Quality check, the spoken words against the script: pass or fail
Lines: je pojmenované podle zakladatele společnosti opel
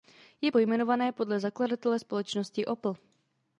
pass